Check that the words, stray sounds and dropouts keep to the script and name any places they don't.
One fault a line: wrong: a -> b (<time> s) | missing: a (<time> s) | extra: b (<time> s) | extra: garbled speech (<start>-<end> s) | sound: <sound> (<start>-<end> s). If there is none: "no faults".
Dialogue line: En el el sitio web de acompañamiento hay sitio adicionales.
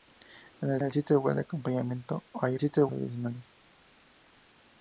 no faults